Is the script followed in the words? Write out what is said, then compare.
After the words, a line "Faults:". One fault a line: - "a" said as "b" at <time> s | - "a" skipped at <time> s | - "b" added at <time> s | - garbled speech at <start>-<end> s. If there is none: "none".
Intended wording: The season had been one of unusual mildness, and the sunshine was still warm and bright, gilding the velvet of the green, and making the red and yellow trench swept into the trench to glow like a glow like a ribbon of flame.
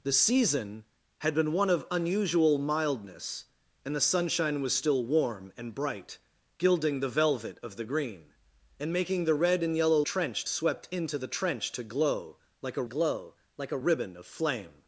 The season had been one of unusual mildness, and the sunshine was still warm and bright, gilding the velvet of the green, and making the red and yellow trench swept into the trench to glow like a glow like a ribbon of flame.
Faults:
none